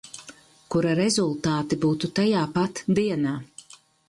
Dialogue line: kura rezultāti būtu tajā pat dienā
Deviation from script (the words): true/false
false